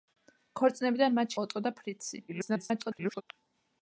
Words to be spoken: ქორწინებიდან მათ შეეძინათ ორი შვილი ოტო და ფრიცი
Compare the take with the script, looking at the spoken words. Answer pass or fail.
fail